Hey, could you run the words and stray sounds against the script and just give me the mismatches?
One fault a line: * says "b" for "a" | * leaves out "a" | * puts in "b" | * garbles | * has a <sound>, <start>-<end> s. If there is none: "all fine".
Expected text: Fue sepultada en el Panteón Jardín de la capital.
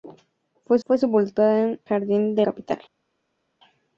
* puts in "fue"
* leaves out "el Panteón"
* leaves out "la"